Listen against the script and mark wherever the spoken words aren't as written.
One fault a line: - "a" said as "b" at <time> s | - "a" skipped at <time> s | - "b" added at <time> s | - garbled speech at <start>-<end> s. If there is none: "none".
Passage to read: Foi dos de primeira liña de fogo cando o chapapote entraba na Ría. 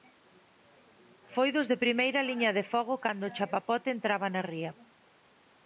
none